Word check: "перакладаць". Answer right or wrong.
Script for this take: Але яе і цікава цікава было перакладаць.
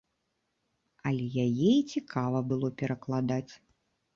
right